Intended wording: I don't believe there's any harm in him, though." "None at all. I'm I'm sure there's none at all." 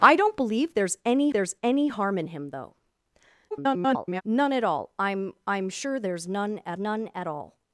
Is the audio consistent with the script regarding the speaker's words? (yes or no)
no